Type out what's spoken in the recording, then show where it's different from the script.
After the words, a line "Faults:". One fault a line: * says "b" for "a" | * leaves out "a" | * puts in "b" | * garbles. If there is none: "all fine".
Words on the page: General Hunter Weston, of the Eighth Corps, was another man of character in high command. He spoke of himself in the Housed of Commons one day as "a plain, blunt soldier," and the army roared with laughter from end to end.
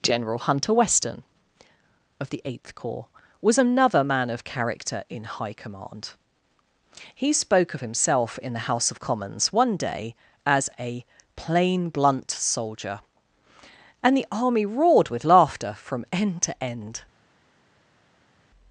General Hunter Weston, of the Eighth Corps, was another man of character in high command. He spoke of himself in the House of Commons one day as "a plain, blunt soldier," and the army roared with laughter from end to end.
Faults:
* says "House" for "Housed"